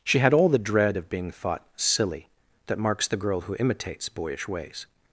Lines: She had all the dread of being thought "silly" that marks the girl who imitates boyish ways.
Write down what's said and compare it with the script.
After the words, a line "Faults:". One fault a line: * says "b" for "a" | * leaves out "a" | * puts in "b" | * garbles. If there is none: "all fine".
She had all the dread of being thought "silly" that marks the girl who imitates boyish ways.
Faults:
all fine